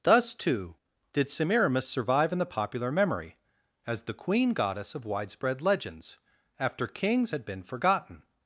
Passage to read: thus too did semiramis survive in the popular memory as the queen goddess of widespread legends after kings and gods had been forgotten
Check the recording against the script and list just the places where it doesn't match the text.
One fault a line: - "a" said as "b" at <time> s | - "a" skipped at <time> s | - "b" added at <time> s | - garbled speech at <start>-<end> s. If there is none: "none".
- "and gods" skipped at 7.3 s